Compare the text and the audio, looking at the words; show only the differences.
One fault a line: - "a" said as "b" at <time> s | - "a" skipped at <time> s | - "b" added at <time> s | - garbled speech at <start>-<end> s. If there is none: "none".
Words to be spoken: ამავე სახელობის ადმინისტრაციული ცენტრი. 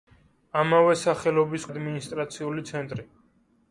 none